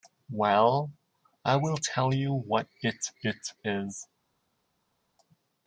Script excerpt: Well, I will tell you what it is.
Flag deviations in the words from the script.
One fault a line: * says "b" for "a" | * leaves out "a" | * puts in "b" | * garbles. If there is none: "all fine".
* puts in "it"